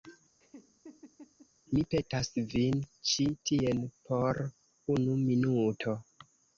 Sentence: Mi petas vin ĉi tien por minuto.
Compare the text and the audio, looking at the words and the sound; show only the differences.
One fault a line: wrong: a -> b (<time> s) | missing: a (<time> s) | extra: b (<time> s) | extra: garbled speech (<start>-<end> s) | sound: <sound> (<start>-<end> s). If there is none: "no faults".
sound: laugh (0.4-1.5 s)
extra: unu (5.0 s)